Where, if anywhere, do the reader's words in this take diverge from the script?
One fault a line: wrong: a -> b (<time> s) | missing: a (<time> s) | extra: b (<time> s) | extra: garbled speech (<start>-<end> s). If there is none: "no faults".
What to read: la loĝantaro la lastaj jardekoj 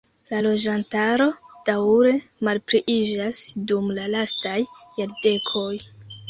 extra: daŭre malpliiĝas dum (1.7 s)